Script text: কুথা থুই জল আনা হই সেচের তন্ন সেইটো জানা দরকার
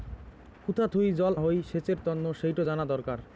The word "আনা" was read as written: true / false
false